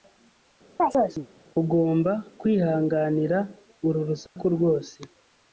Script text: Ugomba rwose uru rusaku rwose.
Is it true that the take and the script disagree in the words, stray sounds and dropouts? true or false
true